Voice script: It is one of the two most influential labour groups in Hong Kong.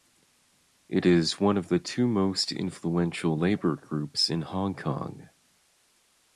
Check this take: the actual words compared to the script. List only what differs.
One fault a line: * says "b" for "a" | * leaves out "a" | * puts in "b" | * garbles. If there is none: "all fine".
all fine